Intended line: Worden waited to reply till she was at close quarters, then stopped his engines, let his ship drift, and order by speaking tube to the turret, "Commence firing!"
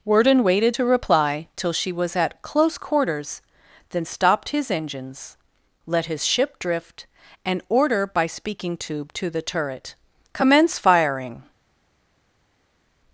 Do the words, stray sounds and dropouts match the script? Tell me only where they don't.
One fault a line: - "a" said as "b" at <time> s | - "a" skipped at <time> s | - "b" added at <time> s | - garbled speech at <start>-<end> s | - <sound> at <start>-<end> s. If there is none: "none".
none